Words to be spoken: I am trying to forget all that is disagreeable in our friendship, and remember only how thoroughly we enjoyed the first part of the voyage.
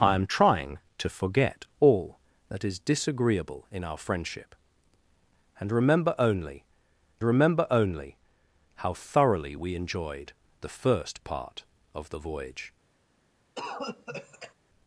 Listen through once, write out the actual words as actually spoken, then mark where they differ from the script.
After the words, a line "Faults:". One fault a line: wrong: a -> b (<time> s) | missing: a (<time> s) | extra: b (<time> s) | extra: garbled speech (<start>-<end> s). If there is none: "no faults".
I am trying to forget all that is disagreeable in our friendship, and remember only remember only how thoroughly we enjoyed the first part of the voyage.
Faults:
extra: remember only (7.2 s)